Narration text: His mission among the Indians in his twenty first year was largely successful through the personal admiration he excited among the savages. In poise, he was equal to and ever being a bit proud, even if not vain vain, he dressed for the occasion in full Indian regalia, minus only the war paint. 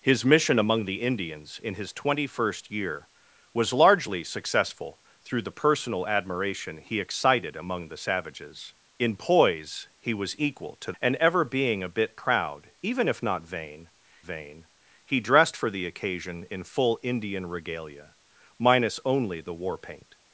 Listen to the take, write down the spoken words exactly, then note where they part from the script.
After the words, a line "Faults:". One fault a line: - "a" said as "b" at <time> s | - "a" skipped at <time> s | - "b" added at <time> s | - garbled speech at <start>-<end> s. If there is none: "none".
His mission among the Indians in his twenty first year was largely successful through the personal admiration he excited among the savages. In poise, he was equal to and ever being a bit proud, even if not vain vain, he dressed for the occasion in full Indian regalia, minus only the war paint.
Faults:
none